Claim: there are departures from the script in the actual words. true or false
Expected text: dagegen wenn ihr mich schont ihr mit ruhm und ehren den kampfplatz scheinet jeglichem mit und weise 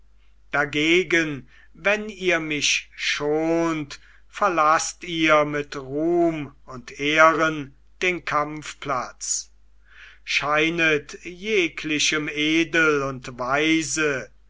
true